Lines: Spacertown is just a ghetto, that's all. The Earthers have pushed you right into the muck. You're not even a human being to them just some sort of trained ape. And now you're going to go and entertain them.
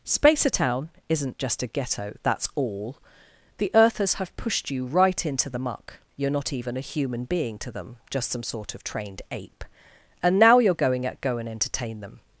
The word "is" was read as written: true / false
false